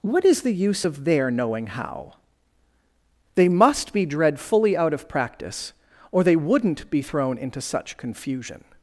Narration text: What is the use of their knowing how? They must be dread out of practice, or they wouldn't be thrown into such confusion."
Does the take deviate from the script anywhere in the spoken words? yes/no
yes